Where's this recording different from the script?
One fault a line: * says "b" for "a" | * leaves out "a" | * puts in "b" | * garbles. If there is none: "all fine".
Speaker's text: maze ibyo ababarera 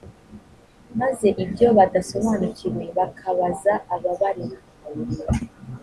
* puts in "badasobanukiwe bakabaza"